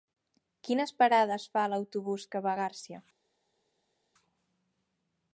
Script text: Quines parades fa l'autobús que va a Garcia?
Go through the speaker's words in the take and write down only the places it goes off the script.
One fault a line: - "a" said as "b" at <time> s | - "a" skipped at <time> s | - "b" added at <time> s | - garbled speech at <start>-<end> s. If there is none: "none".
none